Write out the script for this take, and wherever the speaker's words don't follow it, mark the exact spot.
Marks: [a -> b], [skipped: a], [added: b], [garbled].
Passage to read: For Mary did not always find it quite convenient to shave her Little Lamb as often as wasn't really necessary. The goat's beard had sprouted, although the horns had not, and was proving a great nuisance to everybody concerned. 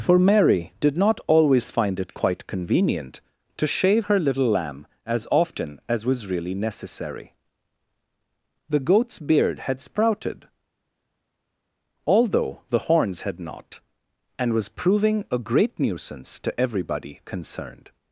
For Mary did not always find it quite convenient to shave her Little Lamb as often as [wasn't -> was] really necessary. The goat's beard had sprouted, although the horns had not, and was proving a great nuisance to everybody concerned.